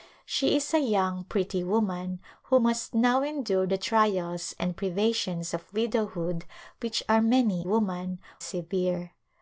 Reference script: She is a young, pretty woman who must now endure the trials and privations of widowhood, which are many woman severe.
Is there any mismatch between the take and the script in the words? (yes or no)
no